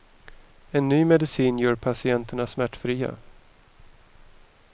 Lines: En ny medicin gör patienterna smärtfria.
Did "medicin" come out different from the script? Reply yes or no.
no